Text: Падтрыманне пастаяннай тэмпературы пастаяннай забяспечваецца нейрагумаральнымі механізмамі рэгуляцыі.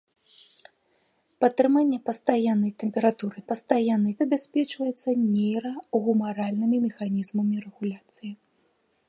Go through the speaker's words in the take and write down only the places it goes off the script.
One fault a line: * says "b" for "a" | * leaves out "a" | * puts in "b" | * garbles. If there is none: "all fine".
all fine